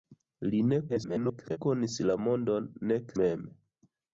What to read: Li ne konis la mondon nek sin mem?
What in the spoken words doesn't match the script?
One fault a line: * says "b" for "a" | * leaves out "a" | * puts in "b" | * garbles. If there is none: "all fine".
* garbles
* leaves out "sin"